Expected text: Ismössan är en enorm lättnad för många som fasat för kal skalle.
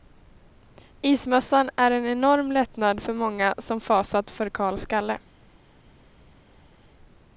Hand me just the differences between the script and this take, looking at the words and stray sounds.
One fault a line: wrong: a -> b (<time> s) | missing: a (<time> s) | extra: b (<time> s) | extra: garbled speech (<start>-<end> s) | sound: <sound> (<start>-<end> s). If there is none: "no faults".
no faults